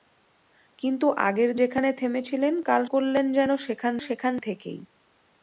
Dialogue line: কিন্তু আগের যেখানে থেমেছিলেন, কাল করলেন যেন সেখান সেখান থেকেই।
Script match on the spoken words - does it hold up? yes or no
yes